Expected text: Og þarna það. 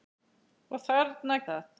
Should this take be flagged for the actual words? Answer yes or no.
no